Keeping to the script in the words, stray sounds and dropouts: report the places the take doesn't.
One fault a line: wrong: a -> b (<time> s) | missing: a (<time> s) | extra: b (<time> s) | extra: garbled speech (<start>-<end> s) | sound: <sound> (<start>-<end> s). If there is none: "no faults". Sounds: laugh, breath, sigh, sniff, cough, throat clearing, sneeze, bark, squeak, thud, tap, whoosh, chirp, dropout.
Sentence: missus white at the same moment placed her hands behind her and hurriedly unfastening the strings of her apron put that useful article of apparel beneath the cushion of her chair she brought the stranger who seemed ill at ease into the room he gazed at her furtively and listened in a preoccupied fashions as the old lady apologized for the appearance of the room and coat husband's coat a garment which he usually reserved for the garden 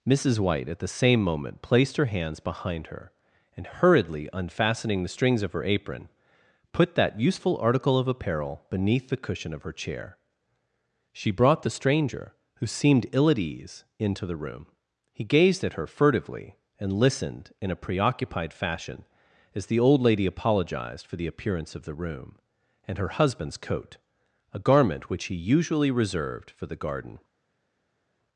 wrong: fashions -> fashion (18.5 s)
wrong: coat -> her (23.0 s)